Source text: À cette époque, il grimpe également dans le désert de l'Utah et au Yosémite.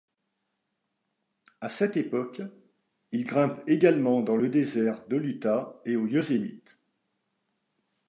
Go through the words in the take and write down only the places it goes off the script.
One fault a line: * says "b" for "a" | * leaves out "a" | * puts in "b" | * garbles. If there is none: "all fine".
all fine